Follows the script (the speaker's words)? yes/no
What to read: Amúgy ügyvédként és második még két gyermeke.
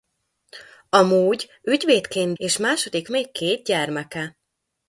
yes